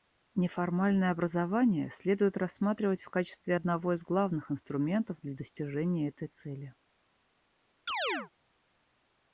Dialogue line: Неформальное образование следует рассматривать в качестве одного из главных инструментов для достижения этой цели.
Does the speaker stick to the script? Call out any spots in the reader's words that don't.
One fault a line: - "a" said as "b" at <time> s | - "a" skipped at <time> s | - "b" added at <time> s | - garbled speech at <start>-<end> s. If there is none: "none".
none